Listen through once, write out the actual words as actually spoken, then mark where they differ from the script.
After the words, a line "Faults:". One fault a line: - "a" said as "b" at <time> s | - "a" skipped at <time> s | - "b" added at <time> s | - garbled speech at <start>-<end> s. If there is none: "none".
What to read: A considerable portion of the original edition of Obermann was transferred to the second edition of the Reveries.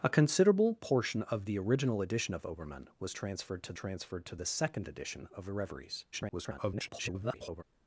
A considerable portion of the original edition of Obermann was transferred to transferred to the second edition of the Reveries. [garbled]
Faults:
- "transferred to" added at 3.7 s
- garbled speech at 6.1-7.6 s